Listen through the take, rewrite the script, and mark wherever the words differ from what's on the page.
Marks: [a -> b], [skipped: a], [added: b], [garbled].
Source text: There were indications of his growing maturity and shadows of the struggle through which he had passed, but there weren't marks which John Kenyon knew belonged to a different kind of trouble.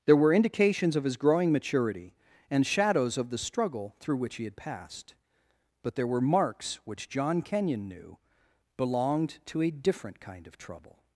There were indications of his growing maturity and shadows of the struggle through which he had passed, but there [weren't -> were] marks which John Kenyon knew belonged to a different kind of trouble.